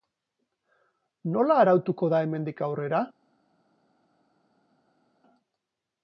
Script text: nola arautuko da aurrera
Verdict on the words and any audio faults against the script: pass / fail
fail